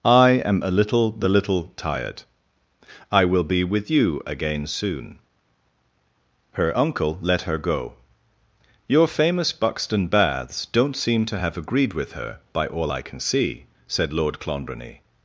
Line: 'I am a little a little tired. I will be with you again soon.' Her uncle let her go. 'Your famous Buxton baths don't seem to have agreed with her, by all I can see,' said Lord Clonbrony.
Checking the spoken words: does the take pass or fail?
fail